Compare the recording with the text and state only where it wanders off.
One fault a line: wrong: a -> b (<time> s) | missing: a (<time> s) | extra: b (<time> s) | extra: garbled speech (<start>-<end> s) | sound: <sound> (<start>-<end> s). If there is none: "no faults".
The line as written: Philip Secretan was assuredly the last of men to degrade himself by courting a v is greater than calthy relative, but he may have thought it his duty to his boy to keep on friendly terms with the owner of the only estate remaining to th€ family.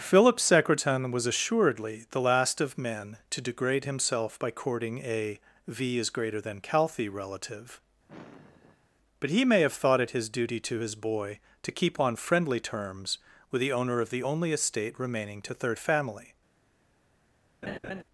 sound: sigh (8.1-8.9 s)
wrong: th -> third (15.5 s)
sound: laugh (17.6-18.0 s)